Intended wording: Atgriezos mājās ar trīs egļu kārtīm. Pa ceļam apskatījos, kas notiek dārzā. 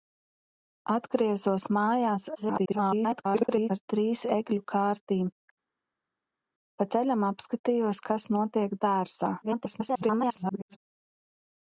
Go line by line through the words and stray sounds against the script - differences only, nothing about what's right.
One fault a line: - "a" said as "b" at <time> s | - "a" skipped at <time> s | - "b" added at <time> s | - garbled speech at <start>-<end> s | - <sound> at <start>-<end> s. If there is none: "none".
- garbled speech at 2.4-3.7 s
- garbled speech at 9.4-10.8 s